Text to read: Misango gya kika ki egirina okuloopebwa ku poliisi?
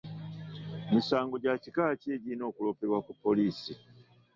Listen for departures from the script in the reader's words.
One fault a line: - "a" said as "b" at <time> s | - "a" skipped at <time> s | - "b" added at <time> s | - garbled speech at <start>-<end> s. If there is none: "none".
none